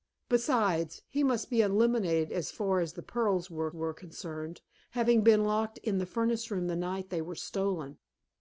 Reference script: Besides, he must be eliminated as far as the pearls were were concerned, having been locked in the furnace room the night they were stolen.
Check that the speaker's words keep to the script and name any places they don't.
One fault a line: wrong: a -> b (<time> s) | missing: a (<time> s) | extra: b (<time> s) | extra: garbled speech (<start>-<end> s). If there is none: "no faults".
no faults